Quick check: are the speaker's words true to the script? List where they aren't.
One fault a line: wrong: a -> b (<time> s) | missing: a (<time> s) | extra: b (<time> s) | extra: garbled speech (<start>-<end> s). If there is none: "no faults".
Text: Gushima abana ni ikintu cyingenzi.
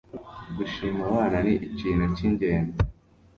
no faults